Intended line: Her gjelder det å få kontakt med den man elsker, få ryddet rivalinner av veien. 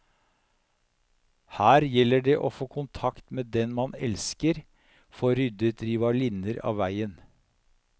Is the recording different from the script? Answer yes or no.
no